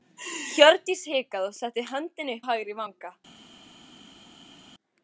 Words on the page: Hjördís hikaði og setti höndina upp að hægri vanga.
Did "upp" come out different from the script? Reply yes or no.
yes